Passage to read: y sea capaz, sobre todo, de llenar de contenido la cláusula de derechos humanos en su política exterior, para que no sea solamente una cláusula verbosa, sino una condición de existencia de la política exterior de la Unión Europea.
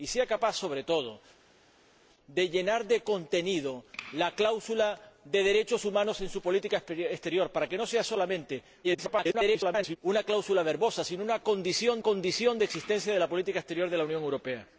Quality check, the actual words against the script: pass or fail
fail